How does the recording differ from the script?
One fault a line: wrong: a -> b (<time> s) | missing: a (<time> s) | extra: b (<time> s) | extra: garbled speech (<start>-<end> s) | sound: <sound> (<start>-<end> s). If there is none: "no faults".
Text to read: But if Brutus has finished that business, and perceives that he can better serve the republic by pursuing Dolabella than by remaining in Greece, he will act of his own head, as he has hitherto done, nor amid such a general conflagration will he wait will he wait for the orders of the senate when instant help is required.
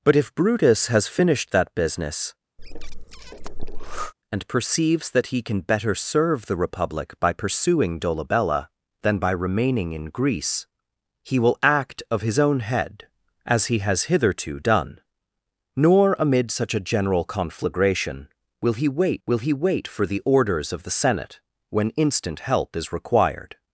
sound: breath (2.6-4.1 s)